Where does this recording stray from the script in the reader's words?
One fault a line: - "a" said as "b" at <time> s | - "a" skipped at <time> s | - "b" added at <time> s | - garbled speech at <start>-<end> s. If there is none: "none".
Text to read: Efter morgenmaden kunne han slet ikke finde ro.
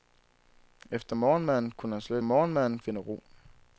- "ikke" said as "morgenmaden" at 2.2 s